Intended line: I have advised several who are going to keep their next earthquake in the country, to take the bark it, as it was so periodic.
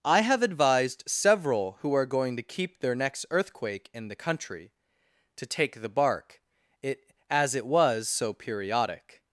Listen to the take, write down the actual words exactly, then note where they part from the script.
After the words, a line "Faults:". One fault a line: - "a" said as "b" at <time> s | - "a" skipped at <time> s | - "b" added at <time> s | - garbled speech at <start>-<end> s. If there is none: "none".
I have advised several who are going to keep their next earthquake in the country, to take the bark it, as it was so periodic.
Faults:
none